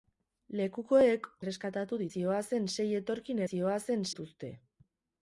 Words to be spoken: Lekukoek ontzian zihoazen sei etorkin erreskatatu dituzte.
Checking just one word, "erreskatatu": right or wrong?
wrong